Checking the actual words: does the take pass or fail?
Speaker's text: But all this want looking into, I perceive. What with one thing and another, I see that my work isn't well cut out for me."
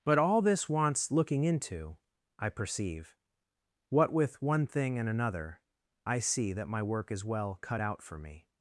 fail